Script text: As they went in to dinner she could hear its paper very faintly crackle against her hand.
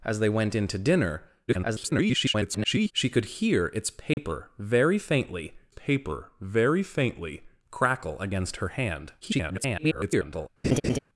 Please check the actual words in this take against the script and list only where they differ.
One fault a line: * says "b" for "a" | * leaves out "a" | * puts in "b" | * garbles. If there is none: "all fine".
* garbles
* puts in "paper very faintly"
* garbles